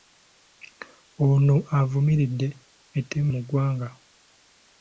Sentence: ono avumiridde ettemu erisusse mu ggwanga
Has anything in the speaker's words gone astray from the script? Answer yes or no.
yes